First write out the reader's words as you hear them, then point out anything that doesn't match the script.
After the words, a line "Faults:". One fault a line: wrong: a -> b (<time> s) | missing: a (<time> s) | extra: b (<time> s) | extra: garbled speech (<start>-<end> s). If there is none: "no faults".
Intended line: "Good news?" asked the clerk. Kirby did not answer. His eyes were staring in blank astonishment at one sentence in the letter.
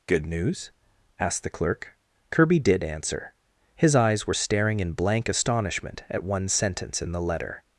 "Good news?" asked the clerk. Kirby did answer. His eyes were staring in blank astonishment at one sentence in the letter.
Faults:
missing: not (2.8 s)